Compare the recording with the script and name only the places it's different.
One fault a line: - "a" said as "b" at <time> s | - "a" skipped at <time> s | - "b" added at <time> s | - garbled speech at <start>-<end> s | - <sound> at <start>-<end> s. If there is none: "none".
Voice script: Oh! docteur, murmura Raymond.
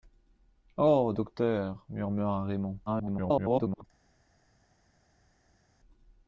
- garbled speech at 2.9-3.9 s